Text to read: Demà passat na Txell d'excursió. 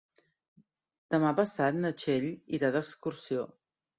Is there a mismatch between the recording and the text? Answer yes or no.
yes